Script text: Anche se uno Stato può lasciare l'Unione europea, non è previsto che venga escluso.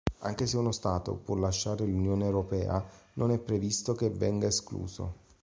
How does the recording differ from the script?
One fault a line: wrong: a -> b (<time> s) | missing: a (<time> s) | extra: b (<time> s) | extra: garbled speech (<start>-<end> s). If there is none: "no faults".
no faults